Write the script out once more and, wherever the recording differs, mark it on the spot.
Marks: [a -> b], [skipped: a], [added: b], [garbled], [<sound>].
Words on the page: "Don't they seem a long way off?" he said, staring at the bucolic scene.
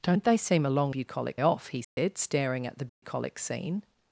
"Don't they seem a long [way -> bucolic] off?" he said, [dropout] staring at the bucolic [dropout] scene.